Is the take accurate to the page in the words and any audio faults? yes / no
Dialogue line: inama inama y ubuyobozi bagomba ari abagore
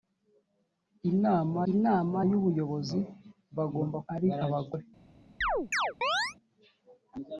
no